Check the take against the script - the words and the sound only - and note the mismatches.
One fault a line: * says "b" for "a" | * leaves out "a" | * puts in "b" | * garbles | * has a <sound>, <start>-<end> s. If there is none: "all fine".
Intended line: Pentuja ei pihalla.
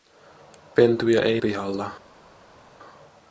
all fine